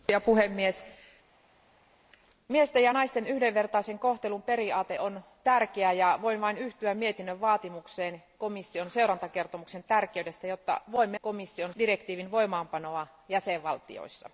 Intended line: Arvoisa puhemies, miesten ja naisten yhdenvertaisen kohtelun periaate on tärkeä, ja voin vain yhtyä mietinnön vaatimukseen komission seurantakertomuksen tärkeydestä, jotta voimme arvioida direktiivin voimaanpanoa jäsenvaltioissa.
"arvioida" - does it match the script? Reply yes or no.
no